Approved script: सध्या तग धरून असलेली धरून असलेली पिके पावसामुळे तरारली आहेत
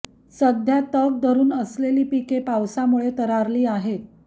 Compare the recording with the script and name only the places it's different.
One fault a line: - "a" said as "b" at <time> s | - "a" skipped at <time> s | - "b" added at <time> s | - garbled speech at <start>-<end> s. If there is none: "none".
- "धरून असलेली" skipped at 2.0 s